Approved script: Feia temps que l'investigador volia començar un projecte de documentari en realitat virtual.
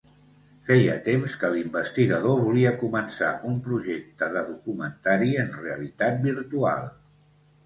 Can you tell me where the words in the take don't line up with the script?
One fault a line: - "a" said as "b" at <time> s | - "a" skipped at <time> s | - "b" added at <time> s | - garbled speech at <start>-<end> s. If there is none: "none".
none